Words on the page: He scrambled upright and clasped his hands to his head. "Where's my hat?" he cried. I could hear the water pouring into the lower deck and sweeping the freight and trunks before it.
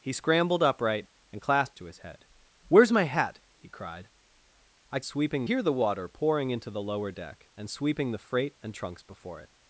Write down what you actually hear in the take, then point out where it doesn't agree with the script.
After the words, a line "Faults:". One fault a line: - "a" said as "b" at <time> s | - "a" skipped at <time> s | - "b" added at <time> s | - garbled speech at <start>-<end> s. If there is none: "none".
He scrambled upright and clasped to his head. "Where's my hat?" he cried. I sweeping hear the water pouring into the lower deck and sweeping the freight and trunks before it.
Faults:
- "his hands" skipped at 1.8 s
- "could" said as "sweeping" at 5.0 s